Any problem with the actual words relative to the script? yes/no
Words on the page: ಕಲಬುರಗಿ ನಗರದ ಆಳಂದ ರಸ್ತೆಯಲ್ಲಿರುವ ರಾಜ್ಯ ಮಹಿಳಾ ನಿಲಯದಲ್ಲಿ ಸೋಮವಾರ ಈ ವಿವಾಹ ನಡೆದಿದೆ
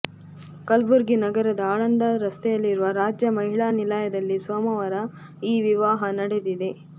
no